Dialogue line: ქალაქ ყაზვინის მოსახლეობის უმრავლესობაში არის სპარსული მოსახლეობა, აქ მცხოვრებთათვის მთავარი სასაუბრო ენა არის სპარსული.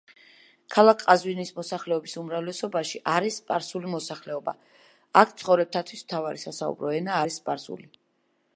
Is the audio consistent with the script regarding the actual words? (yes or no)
yes